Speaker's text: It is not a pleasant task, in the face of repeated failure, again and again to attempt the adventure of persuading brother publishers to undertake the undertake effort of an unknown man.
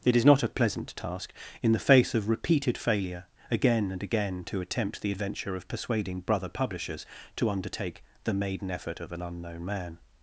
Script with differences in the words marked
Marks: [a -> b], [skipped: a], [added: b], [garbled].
It is not a pleasant task, in the face of repeated failure, again and again to attempt the adventure of persuading brother publishers to undertake the [undertake -> maiden] effort of an unknown man.